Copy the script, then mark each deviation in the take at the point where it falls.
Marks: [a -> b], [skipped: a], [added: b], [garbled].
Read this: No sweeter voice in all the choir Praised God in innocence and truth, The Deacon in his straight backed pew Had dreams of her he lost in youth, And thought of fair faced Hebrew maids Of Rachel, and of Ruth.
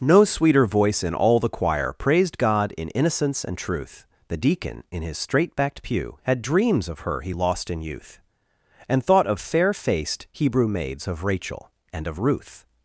No sweeter voice in all the choir Praised God in innocence and truth, The Deacon in his straight backed pew Had dreams of her he lost in youth, And thought of fair faced Hebrew maids Of Rachel, and of Ruth.